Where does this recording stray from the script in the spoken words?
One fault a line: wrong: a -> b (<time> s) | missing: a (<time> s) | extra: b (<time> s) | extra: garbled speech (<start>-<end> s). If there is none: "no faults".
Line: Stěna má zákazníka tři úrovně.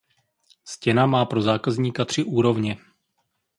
extra: pro (1.2 s)